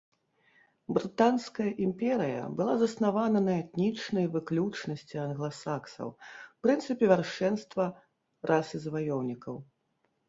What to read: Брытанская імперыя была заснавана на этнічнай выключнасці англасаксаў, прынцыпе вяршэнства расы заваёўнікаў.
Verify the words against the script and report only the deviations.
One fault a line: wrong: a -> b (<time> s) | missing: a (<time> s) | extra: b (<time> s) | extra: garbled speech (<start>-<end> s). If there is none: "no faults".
no faults